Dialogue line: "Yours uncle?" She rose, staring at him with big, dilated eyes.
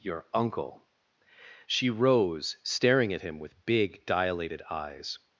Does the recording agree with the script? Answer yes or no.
no